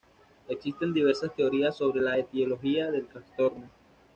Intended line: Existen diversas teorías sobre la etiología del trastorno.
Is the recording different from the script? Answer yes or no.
no